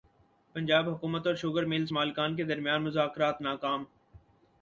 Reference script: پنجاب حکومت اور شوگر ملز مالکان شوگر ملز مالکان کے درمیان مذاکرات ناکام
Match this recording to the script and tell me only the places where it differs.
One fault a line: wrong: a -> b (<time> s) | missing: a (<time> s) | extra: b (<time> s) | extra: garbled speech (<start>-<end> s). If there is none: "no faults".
missing: شوگر ملز مالکان (2.4 s)